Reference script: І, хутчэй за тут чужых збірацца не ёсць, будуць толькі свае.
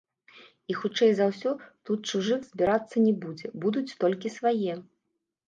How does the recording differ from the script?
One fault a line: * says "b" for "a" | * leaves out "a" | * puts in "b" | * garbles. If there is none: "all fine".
* puts in "ўсё"
* says "будзе" for "ёсць"